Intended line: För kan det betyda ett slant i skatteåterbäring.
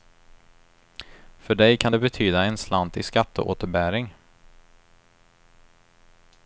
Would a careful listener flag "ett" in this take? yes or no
yes